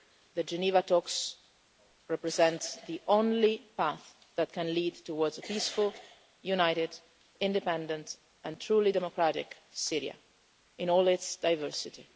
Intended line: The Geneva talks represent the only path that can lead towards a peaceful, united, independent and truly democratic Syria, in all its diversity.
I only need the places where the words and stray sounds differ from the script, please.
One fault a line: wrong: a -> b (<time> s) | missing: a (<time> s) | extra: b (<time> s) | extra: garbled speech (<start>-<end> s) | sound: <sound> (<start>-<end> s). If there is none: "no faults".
no faults